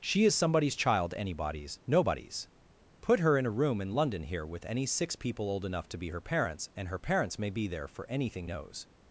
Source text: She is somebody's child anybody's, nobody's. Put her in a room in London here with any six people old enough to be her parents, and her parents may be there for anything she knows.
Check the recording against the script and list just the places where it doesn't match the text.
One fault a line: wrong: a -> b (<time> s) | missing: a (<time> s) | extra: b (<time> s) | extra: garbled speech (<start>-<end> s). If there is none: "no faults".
missing: she (8.5 s)